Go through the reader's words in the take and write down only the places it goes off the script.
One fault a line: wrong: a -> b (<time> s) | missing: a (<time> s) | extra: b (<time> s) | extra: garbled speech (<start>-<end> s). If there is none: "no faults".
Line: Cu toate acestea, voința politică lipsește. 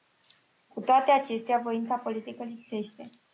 no faults